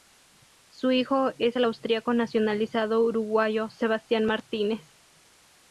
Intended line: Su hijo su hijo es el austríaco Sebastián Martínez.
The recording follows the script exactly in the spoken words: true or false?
false